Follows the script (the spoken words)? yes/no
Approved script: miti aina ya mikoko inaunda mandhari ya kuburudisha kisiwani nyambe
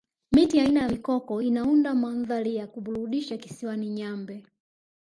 yes